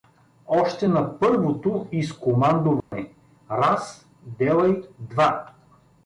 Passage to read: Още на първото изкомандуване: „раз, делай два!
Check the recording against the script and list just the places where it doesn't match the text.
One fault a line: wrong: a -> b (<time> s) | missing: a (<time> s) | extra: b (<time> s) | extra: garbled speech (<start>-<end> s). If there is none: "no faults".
no faults